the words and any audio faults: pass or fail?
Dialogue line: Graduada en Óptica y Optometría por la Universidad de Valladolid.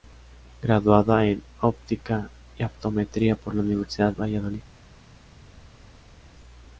fail